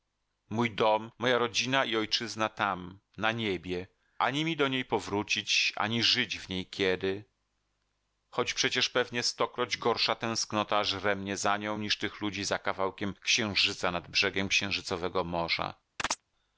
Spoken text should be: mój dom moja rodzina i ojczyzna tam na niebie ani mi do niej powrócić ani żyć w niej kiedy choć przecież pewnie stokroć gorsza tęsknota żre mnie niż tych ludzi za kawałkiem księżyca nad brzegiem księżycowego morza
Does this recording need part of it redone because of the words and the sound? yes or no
yes